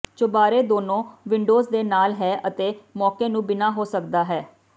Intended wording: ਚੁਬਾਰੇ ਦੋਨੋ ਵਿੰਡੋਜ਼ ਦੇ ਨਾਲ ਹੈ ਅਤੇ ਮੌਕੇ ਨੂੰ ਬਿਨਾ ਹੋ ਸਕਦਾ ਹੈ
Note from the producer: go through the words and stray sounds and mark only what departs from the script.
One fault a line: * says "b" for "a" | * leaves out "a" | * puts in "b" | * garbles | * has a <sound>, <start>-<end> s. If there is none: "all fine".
all fine